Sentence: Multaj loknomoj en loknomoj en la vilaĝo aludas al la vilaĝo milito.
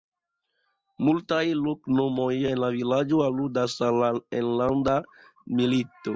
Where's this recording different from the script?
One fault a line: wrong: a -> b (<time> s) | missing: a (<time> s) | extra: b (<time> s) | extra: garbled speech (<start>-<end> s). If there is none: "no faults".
missing: loknomoj en (2.6 s)
wrong: vilaĝo -> enlanda (4.4 s)